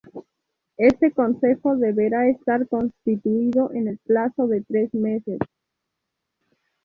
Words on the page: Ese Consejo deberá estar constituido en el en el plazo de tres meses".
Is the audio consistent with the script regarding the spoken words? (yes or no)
no